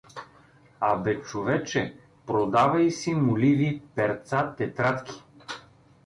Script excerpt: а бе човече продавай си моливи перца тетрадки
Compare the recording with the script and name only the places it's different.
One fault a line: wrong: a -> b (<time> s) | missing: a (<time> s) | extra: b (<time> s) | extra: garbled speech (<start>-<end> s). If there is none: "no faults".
no faults